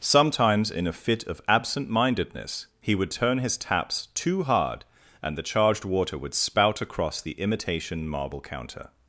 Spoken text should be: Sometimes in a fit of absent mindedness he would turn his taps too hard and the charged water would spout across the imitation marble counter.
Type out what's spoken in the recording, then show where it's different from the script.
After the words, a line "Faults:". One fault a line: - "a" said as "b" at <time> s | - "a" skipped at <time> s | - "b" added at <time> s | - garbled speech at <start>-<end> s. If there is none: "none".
Sometimes in a fit of absent mindedness he would turn his taps too hard and the charged water would spout across the imitation marble counter.
Faults:
none